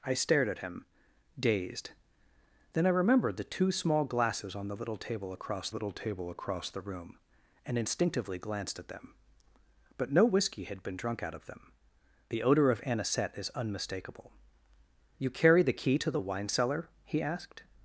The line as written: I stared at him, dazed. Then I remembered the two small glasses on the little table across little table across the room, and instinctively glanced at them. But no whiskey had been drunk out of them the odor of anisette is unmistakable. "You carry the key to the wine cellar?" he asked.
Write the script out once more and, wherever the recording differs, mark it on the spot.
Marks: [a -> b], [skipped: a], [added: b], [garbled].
I stared at him, dazed. Then I remembered the two small glasses on the little table across little table across the room, and instinctively glanced at them. But no whiskey had been drunk out of them the odor of anisette is unmistakable. "You carry the key to the wine cellar?" he asked.